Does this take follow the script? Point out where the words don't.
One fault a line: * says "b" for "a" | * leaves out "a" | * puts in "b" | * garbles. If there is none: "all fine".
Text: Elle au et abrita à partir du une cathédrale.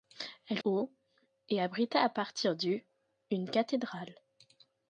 all fine